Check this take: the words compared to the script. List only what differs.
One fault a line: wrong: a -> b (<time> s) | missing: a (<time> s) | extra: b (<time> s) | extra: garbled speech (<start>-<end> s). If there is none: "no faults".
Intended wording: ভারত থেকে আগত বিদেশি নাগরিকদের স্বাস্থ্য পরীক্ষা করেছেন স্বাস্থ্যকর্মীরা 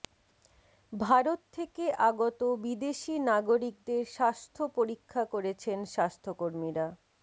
no faults